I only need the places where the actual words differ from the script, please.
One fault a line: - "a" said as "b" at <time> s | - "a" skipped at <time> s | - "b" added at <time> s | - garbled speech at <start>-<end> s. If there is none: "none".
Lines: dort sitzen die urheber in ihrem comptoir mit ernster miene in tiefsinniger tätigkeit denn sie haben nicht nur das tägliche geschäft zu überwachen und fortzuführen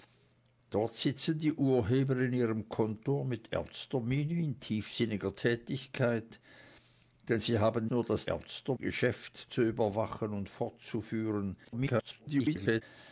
- "nicht" skipped at 7.9 s
- "tägliche" said as "ernster" at 8.3 s
- garbled speech at 11.6-12.8 s